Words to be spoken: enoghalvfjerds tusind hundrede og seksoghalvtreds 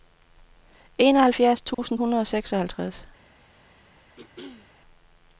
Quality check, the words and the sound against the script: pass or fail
fail